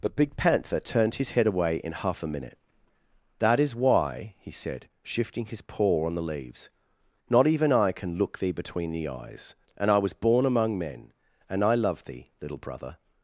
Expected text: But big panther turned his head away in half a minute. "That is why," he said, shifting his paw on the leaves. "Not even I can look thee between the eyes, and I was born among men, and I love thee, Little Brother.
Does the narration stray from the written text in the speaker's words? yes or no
no